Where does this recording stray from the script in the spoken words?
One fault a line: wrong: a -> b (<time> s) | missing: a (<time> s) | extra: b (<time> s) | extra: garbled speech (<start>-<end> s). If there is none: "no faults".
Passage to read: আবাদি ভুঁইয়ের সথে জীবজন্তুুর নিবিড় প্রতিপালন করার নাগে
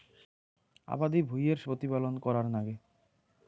missing: সথে জীবজন্তুুর নিবিড় (1.6 s)